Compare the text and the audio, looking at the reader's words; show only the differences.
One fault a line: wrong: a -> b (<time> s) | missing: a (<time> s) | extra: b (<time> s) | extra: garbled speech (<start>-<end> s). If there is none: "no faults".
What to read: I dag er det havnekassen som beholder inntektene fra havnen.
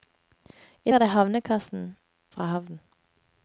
missing: dag (0.9 s)
missing: som beholder inntektene (2.0 s)